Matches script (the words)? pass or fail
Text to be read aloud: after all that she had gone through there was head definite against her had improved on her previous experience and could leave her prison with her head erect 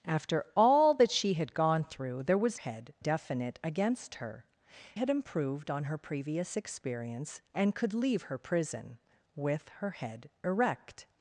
pass